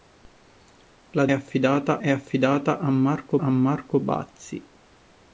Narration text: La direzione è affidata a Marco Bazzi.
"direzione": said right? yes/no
no